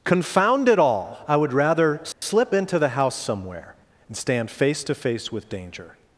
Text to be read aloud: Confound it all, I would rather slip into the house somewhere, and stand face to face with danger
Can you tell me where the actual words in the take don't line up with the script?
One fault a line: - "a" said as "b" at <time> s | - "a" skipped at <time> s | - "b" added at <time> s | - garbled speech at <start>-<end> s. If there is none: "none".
none